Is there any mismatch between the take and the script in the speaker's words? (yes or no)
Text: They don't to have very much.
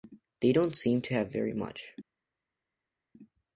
yes